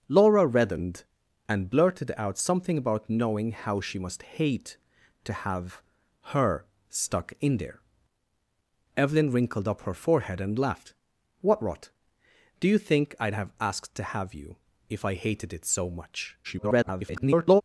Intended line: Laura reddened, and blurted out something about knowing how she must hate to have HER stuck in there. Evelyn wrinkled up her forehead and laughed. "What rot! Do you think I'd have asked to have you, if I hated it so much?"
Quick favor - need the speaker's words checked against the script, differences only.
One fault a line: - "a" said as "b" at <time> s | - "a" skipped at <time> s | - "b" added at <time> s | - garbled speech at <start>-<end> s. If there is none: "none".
- garbled speech at 16.4-17.6 s